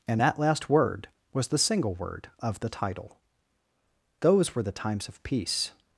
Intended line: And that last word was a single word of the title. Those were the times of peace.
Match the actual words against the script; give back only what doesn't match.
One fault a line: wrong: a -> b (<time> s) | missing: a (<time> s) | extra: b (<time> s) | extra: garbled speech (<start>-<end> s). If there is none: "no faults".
wrong: a -> the (1.5 s)